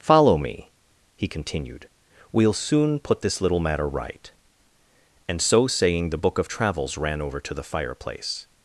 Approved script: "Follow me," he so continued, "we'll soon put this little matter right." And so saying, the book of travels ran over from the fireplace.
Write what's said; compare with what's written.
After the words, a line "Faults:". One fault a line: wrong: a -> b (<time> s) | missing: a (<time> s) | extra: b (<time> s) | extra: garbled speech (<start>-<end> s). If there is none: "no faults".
"Follow me," he continued, "we'll soon put this little matter right." And so saying, the book of travels ran over to the fireplace.
Faults:
missing: so (1.3 s)
wrong: from -> to (7.4 s)